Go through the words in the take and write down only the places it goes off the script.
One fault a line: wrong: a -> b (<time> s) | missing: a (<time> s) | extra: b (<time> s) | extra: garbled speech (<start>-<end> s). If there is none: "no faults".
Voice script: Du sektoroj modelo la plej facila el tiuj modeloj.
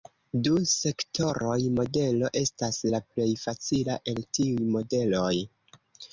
extra: estas (2.4 s)